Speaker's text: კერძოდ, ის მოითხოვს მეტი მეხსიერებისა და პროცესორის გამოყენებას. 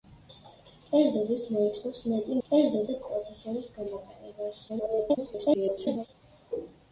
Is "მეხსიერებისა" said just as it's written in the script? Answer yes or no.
no